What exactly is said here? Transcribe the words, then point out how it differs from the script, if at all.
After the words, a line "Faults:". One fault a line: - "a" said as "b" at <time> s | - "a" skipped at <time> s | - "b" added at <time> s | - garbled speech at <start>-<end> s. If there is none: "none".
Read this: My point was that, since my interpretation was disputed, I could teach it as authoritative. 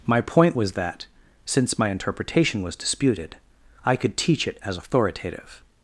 My point was that, since my interpretation was disputed, I could teach it as authoritative.
Faults:
none